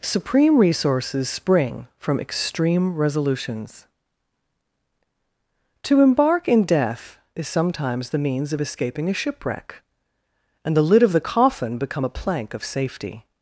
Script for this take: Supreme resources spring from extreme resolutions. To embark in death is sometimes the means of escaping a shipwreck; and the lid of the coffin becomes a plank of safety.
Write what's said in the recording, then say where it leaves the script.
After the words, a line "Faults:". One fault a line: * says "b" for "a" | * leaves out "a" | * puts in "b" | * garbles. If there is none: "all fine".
Supreme resources spring from extreme resolutions. To embark in death is sometimes the means of escaping a shipwreck; and the lid of the coffin become a plank of safety.
Faults:
* says "become" for "becomes"